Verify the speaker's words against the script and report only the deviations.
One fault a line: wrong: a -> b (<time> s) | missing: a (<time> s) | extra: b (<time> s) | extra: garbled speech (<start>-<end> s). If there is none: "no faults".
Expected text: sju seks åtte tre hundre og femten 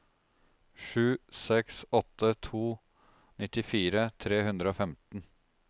extra: to nittifire (2.5 s)